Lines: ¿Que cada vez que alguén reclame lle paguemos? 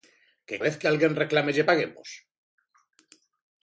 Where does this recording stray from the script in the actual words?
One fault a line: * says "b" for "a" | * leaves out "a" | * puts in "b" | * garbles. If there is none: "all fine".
* leaves out "cada"